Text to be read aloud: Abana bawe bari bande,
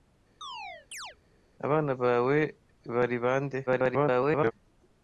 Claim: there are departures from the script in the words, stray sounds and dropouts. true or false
true